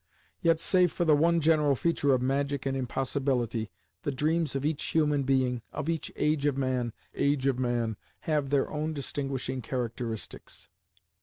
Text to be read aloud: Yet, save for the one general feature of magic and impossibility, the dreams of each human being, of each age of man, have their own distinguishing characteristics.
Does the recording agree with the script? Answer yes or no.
no